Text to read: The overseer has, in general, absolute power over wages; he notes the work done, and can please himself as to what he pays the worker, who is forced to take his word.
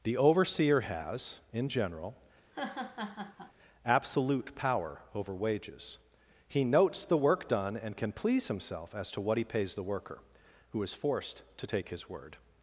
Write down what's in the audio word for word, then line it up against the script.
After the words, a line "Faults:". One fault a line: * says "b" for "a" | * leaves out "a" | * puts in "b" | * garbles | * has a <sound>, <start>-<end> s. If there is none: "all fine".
The overseer has, in general, absolute power over wages; he notes the work done, and can please himself as to what he pays the worker, who is forced to take his word.
Faults:
* has a laugh, 2.4-3.5 s